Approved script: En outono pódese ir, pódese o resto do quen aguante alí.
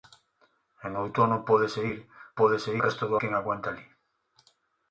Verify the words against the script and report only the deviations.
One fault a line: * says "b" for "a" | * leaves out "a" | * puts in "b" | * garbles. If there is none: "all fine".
all fine